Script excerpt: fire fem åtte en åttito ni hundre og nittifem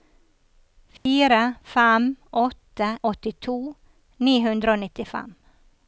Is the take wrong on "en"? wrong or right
wrong